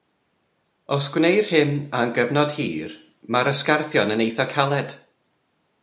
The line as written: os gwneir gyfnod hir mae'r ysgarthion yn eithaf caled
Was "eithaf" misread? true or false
false